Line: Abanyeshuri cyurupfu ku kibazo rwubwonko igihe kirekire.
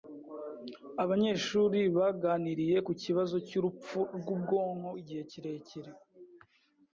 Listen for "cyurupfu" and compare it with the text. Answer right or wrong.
wrong